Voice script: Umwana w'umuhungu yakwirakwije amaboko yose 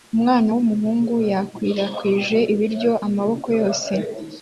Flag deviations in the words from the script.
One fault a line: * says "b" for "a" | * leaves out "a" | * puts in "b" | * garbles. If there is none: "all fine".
* puts in "ibiryo"